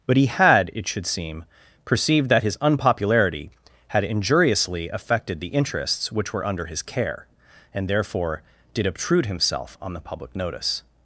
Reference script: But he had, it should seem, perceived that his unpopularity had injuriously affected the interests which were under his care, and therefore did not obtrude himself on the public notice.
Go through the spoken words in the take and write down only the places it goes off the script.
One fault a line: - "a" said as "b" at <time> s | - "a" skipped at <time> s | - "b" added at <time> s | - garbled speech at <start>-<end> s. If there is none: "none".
- "not" skipped at 8.9 s